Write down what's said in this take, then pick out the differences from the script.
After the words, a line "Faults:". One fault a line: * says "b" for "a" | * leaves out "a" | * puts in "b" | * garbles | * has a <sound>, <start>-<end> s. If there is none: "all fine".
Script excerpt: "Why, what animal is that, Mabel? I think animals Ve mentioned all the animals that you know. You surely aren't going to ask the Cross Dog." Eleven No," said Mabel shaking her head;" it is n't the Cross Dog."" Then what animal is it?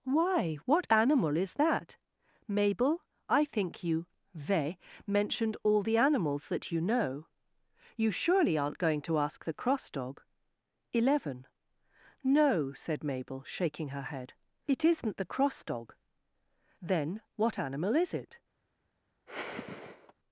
"Why, what animal is that, Mabel? I think you Ve mentioned all the animals that you know. You surely aren't going to ask the Cross Dog." Eleven No," said Mabel shaking her head;" it is n't the Cross Dog."" Then what animal is it?
Faults:
* says "you" for "animals"
* has a sigh, 19.3-20.1 s